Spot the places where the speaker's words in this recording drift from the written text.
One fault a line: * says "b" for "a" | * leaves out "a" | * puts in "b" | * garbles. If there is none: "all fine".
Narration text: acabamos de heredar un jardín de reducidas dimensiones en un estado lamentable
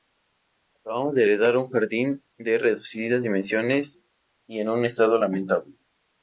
* puts in "y"